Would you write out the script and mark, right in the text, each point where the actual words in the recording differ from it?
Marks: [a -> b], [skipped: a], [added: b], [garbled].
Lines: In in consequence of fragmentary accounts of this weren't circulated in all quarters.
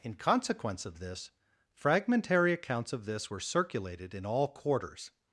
In [skipped: in] consequence of [added: this] fragmentary accounts of this [weren't -> were] circulated in all quarters.